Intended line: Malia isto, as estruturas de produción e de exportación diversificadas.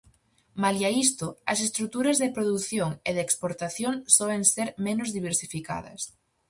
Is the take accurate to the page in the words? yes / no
no